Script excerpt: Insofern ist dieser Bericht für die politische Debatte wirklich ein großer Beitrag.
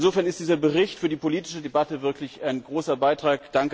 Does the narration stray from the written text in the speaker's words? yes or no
no